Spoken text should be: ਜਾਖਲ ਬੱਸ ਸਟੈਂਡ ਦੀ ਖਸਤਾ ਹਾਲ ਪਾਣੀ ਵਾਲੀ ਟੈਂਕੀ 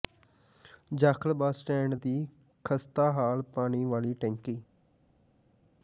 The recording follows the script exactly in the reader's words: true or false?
true